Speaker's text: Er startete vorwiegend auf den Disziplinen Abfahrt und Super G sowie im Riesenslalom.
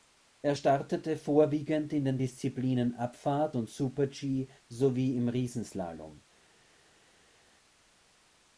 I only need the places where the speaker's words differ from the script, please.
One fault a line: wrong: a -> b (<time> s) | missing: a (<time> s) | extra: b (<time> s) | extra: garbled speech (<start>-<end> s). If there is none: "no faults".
wrong: auf -> in (1.9 s)